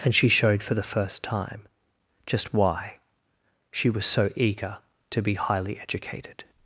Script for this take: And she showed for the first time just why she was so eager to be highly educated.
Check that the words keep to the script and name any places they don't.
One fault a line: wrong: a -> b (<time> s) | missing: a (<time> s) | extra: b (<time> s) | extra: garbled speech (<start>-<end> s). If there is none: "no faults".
no faults